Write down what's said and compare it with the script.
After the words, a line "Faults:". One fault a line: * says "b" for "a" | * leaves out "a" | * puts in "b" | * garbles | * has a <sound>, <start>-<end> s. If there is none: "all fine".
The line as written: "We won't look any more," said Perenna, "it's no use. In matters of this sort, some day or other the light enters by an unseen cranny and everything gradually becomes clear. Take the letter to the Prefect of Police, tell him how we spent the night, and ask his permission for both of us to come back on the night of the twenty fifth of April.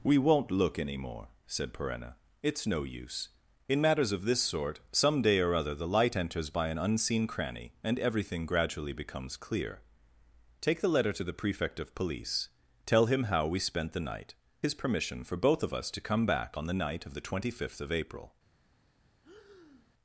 "We won't look any more," said Perenna, "it's no use. In matters of this sort, some day or other the light enters by an unseen cranny and everything gradually becomes clear. Take the letter to the Prefect of Police, tell him how we spent the night, his permission for both of us to come back on the night of the twenty fifth of April.
Faults:
* leaves out "and ask"
* has a breath, 19.2-19.9 s